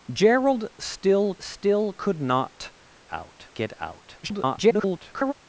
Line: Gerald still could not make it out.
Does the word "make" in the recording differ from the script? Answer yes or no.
yes